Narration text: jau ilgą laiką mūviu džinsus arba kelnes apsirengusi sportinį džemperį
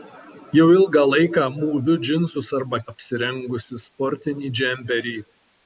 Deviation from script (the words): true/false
true